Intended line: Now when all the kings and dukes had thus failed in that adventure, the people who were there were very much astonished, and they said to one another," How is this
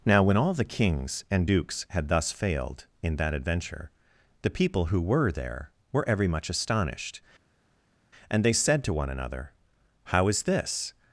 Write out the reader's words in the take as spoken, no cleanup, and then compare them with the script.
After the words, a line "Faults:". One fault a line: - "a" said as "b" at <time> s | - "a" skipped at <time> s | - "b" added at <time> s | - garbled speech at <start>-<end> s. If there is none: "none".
Now when all the kings and dukes had thus failed in that adventure, the people who were there were every much astonished, and they said to one another," How is this
Faults:
- "very" said as "every" at 6.1 s